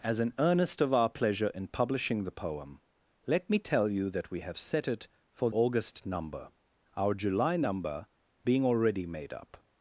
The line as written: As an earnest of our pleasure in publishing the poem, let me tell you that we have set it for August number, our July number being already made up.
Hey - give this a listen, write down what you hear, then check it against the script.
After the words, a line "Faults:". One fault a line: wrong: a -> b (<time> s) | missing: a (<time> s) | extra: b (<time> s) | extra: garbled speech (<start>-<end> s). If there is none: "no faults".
As an earnest of our pleasure in publishing the poem, let me tell you that we have set it for August number, our July number being already made up.
Faults:
no faults